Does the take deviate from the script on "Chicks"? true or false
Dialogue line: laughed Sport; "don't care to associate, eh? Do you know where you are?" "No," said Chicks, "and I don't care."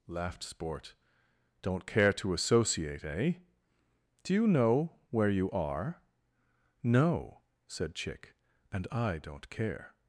true